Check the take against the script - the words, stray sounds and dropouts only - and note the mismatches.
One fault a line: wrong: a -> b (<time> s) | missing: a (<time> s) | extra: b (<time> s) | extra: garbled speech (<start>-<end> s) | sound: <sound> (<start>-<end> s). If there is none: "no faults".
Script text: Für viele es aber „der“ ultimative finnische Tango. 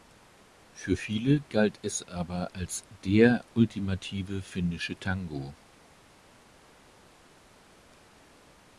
extra: galt (1.4 s)
extra: als (2.5 s)